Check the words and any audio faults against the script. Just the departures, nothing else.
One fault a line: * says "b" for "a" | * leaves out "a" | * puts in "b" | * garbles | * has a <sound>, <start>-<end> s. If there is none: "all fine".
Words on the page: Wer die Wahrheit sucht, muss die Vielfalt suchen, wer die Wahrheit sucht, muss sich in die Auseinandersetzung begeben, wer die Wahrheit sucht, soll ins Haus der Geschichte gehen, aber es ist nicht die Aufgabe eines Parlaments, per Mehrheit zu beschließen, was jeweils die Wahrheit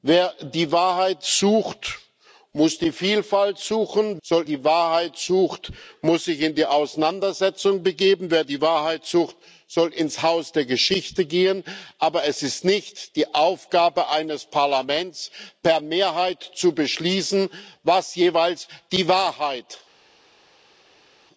* says "soll" for "wer"